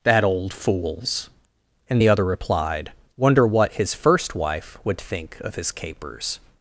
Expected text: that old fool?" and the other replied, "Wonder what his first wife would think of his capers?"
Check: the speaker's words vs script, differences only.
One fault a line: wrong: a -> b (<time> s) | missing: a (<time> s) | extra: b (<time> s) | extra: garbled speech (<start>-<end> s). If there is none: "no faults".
wrong: fool -> fools (0.5 s)